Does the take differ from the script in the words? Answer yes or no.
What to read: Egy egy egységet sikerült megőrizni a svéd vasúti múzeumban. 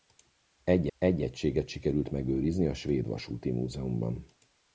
no